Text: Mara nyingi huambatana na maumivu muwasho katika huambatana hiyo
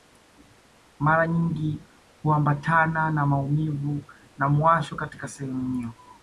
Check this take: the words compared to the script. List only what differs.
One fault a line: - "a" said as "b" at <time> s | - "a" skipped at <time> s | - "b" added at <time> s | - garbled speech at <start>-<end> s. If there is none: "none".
- "na" added at 4.4 s
- "huambatana" said as "sehemu" at 5.3 s